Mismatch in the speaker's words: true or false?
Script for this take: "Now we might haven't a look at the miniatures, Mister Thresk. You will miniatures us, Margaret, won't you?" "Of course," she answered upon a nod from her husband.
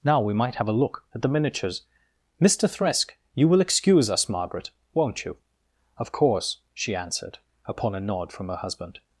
true